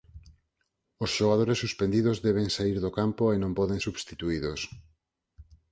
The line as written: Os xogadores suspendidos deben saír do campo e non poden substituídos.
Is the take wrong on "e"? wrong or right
right